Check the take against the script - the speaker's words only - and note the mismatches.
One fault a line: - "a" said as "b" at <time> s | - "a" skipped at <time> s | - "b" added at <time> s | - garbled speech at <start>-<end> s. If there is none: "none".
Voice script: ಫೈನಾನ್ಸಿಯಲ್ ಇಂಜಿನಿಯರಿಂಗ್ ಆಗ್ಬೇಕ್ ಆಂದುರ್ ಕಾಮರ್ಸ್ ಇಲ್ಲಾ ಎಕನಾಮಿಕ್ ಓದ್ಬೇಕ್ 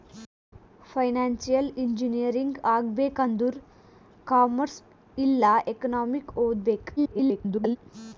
- garbled speech at 7.0-7.8 s